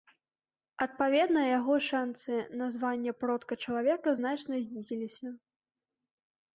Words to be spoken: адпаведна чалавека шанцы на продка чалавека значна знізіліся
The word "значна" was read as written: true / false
true